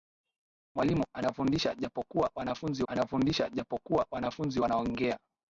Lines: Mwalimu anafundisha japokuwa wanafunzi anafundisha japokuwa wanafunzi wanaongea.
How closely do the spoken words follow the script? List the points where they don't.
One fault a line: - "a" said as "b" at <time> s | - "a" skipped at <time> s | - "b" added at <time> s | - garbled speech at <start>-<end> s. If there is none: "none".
none